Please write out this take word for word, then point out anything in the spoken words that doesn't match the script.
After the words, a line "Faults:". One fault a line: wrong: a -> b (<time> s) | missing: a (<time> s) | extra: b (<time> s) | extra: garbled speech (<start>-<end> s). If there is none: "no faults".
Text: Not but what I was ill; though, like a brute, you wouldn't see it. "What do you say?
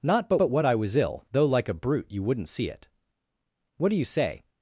Not but but what I was ill; though, like a brute, you wouldn't see it. "What do you say?
Faults:
extra: but (0.4 s)